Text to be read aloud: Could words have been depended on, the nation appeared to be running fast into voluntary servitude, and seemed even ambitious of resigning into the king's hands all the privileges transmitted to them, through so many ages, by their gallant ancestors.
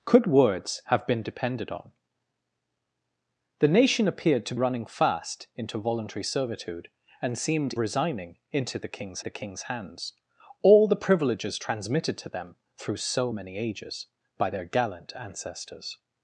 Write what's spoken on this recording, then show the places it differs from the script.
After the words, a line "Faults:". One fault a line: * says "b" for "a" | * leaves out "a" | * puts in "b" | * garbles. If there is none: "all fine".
Could words have been depended on, the nation appeared to running fast into voluntary servitude, and seemed resigning into the king's the king's hands all the privileges transmitted to them, through so many ages, by their gallant ancestors.
Faults:
* leaves out "be"
* says "resigning into the king's" for "even ambitious of resigning into"